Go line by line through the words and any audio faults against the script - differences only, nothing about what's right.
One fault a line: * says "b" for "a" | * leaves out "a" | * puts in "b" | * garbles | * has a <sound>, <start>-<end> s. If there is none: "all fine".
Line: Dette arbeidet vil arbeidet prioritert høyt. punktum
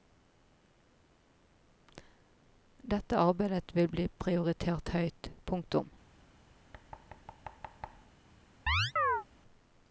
* says "bli" for "arbeidet"
* has a thud, 6.7-8.1 s
* has a chirp, 8.7-9.2 s